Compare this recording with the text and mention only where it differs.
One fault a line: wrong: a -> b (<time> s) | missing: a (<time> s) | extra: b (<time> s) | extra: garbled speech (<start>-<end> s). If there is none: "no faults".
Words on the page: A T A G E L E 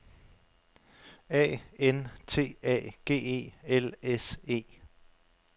extra: N (1.8 s)
extra: S (4.0 s)